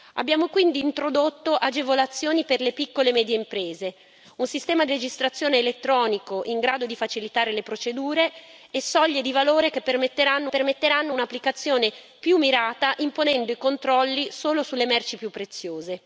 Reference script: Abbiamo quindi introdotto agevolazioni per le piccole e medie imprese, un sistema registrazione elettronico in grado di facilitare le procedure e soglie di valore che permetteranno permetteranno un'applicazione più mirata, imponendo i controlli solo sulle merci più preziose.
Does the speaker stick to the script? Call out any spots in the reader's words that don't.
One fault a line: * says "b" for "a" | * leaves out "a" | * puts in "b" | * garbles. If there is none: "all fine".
all fine